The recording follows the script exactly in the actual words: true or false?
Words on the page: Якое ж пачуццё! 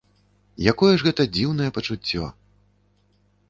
false